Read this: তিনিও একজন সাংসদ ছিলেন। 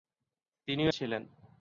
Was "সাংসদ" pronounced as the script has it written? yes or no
no